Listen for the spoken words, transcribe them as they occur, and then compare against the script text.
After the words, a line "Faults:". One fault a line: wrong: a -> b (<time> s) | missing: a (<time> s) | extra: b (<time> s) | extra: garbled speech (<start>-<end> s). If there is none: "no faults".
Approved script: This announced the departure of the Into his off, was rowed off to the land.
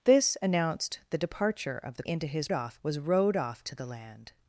This announced the departure of the Into his off, was rowed off to the land.
Faults:
no faults